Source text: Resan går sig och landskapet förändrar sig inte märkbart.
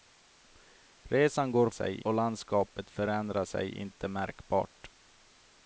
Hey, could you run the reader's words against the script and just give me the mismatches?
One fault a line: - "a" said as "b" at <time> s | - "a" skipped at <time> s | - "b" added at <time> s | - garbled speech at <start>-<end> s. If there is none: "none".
none